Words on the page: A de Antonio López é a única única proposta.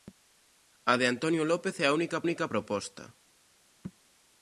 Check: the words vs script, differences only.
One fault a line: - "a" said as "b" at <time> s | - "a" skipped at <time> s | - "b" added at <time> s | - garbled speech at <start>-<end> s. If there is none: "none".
none